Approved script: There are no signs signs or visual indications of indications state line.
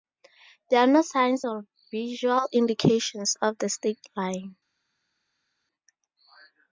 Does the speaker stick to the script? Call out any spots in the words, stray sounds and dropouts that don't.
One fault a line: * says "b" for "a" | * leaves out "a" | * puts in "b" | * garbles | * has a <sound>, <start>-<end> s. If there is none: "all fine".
* leaves out "signs"
* says "the" for "indications"